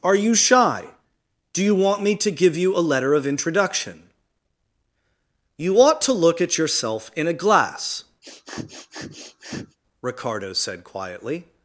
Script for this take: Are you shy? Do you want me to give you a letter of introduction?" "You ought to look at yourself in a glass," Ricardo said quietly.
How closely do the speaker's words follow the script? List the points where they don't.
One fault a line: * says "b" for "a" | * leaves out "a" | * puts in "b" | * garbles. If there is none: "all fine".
all fine